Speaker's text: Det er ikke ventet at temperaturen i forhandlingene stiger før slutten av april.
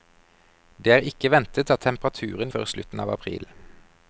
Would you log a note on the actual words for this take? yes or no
yes